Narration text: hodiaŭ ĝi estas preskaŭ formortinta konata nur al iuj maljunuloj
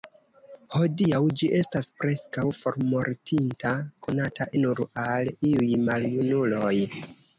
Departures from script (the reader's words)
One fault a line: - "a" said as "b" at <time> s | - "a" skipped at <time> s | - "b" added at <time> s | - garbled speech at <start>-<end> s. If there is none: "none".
none